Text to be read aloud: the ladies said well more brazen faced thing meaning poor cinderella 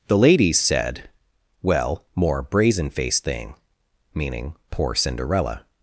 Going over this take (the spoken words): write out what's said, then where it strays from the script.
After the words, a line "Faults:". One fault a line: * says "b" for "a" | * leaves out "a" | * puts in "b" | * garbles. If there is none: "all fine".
the ladies said well more brazen faced thing meaning poor cinderella
Faults:
all fine